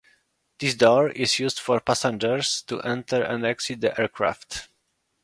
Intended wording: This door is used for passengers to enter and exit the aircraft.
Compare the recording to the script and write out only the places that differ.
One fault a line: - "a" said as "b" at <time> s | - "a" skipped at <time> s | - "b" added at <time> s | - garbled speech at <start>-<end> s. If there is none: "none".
none